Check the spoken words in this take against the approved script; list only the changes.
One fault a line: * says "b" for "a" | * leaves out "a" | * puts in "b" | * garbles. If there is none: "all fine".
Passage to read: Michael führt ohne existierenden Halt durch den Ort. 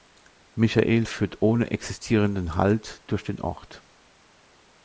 all fine